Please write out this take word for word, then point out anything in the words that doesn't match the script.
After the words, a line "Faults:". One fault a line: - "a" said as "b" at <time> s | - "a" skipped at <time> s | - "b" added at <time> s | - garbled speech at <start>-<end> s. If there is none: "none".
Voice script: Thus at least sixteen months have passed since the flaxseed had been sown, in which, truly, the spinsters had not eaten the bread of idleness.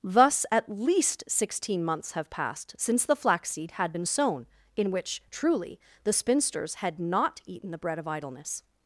Thus at least sixteen months have passed since the flaxseed had been sown, in which, truly, the spinsters had not eaten the bread of idleness.
Faults:
none